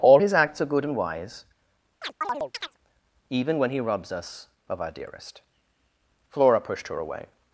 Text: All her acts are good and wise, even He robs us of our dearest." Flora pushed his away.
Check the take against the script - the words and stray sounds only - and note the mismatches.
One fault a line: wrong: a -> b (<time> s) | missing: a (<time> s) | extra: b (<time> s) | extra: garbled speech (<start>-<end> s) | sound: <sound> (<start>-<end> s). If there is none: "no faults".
wrong: her -> his (0.2 s)
sound: chirp (2.0-2.8 s)
extra: when (3.6 s)
wrong: his -> her (6.9 s)